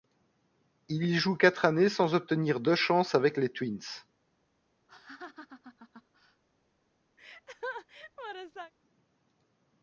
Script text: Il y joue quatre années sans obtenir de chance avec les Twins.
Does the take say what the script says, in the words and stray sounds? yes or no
no